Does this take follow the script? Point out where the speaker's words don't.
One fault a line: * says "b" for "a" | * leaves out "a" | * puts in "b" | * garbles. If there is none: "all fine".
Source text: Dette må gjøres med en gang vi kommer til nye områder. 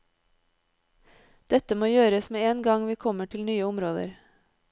all fine